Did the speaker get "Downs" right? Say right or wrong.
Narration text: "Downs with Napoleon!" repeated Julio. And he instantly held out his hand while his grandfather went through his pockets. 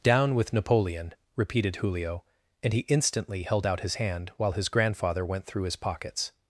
wrong